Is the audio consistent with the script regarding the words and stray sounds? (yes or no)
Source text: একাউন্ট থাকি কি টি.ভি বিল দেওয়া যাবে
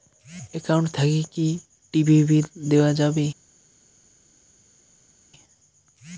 yes